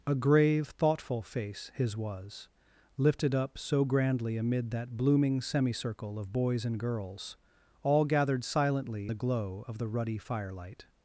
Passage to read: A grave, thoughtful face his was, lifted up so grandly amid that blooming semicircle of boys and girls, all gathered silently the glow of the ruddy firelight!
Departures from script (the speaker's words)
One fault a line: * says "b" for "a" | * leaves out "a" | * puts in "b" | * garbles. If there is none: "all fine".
all fine